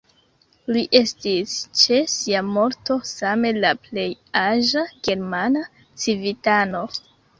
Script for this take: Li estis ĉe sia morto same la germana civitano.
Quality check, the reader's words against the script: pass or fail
fail